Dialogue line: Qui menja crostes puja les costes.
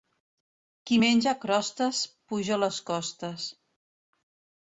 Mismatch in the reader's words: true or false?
false